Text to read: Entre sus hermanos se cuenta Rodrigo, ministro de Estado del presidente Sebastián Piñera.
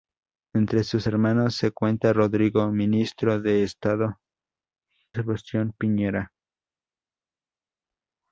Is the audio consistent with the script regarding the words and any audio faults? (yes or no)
no